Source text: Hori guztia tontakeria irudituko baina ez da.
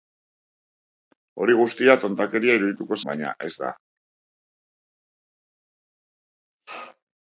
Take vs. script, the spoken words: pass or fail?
pass